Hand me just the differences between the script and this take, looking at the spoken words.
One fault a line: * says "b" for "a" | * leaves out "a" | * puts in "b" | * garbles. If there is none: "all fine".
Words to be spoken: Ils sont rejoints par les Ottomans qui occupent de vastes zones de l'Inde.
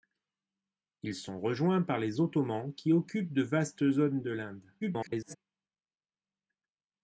* garbles